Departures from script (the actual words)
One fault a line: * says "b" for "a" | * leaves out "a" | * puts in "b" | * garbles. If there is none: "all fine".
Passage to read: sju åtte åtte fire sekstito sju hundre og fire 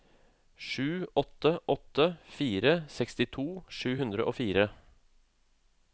all fine